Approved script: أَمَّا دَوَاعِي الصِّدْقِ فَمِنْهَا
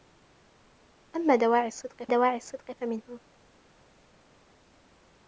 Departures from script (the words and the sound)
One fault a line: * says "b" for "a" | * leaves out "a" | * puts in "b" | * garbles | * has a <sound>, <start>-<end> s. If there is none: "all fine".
* puts in "دَوَاعِي الصِّدْقِ"